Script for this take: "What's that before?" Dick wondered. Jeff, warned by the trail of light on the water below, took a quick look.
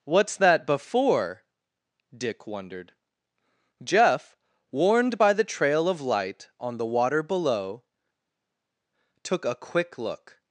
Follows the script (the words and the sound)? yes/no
yes